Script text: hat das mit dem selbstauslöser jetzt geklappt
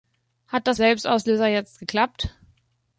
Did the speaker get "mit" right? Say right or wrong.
wrong